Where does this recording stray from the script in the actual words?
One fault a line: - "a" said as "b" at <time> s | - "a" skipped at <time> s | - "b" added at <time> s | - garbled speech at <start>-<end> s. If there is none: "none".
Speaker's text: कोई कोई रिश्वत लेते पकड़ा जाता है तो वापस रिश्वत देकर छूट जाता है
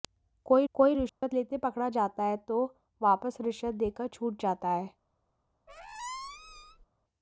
none